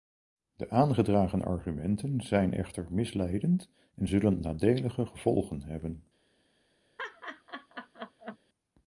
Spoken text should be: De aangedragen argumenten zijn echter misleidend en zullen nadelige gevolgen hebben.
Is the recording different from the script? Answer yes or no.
no